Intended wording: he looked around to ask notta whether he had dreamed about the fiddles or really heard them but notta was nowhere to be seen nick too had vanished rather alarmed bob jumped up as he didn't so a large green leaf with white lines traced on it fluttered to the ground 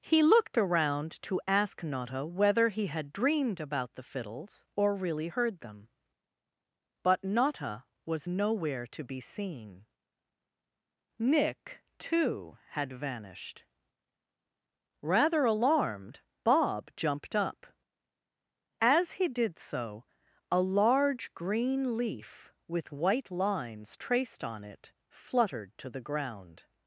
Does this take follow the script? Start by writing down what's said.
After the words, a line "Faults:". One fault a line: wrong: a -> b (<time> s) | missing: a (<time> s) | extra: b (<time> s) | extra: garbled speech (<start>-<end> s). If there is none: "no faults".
he looked around to ask notta whether he had dreamed about the fiddles or really heard them but notta was nowhere to be seen nick too had vanished rather alarmed bob jumped up as he did so a large green leaf with white lines traced on it fluttered to the ground
Faults:
wrong: didn't -> did (19.3 s)